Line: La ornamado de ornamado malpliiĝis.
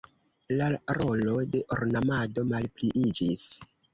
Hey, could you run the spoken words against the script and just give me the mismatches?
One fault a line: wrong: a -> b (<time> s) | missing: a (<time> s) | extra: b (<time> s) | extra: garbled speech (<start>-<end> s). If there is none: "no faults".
wrong: ornamado -> rolo (1.0 s)